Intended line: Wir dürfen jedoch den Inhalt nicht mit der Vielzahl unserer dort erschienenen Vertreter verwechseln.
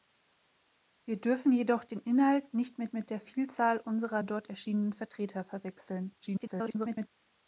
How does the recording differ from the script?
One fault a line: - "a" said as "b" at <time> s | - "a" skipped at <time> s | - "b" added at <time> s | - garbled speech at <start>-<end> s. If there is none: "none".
- "mit" added at 2.9 s
- garbled speech at 6.2-7.1 s